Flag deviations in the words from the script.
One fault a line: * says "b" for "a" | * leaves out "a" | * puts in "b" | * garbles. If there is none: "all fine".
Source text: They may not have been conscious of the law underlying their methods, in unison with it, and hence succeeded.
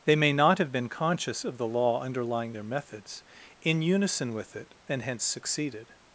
all fine